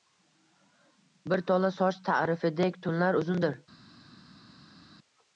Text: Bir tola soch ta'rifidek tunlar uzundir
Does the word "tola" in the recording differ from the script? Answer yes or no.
no